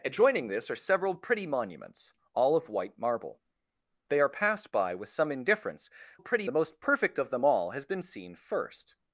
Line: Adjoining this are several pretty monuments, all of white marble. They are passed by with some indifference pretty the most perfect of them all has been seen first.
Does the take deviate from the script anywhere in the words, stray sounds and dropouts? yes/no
no